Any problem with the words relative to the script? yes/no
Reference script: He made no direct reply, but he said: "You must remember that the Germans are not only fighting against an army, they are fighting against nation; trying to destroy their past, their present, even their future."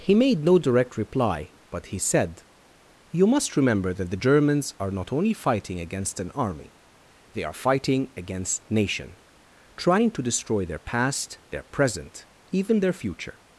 no